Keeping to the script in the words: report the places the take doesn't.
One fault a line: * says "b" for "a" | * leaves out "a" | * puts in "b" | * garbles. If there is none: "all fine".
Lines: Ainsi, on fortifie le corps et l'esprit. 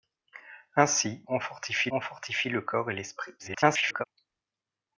* puts in "on fortifie"
* garbles